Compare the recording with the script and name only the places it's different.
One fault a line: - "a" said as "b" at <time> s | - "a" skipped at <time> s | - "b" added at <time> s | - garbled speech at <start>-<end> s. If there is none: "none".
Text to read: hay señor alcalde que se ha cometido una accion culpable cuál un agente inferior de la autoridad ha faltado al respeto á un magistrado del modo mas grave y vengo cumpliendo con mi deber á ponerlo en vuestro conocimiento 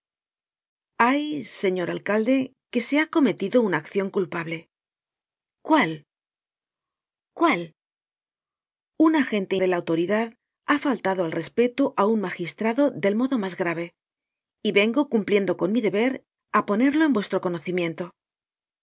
- "cuál" added at 7.4 s
- "inferior" skipped at 9.6 s